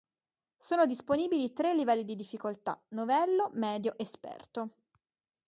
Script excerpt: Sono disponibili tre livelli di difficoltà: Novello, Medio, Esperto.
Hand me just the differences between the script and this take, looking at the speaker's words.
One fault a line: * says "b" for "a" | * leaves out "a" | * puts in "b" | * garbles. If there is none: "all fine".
all fine